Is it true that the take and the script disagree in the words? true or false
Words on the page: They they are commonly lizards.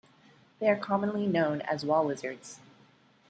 true